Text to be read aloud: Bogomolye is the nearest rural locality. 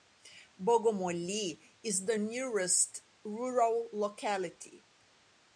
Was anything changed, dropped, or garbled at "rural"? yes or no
no